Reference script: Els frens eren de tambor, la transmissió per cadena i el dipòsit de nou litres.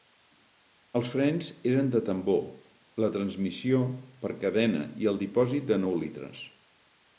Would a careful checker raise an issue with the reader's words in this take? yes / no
no